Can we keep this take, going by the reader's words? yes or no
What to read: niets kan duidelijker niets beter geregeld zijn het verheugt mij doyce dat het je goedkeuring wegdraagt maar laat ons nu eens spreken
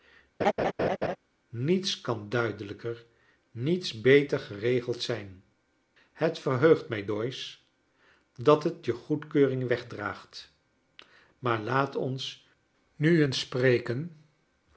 yes